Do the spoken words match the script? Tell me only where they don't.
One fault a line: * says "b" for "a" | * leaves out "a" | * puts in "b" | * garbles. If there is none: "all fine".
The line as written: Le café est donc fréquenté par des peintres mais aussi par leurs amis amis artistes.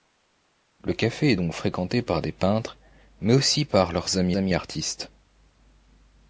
all fine